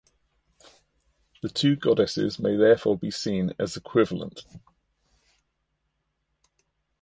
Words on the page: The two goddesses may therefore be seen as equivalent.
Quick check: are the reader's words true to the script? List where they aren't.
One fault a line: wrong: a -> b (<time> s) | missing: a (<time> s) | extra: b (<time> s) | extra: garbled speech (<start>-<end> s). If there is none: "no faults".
no faults